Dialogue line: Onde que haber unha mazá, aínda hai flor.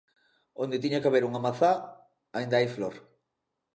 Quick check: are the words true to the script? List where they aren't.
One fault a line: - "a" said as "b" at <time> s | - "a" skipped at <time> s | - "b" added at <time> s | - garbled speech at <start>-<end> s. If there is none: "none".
- "tiña" added at 0.8 s